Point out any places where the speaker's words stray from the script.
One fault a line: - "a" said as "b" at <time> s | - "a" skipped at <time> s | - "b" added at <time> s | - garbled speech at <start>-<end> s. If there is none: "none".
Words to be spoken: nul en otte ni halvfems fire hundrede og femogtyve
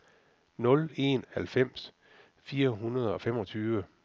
- "otte ni" skipped at 1.2 s